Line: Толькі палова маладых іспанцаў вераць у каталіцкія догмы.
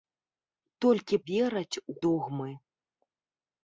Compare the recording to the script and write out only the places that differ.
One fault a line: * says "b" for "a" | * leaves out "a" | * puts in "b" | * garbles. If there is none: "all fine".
* leaves out "палова маладых іспанцаў"
* leaves out "каталіцкія"